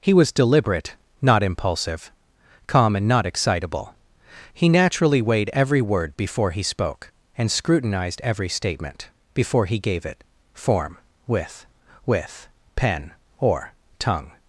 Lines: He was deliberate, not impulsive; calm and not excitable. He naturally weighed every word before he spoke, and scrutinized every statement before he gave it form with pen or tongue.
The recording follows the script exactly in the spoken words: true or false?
false